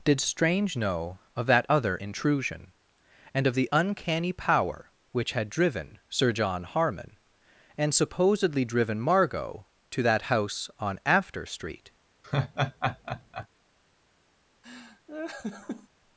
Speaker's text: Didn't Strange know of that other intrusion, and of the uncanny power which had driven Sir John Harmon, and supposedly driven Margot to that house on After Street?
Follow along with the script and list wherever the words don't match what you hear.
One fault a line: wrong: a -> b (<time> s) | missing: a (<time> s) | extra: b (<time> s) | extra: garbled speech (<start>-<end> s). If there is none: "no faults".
wrong: Didn't -> Did (0.0 s)